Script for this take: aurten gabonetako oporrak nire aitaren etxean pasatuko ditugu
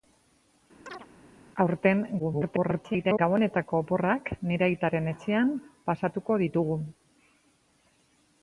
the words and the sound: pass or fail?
fail